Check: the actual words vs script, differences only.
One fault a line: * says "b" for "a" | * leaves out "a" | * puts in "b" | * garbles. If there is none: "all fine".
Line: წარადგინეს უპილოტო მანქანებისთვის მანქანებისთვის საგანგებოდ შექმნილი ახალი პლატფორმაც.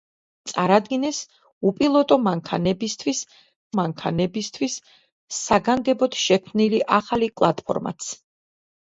all fine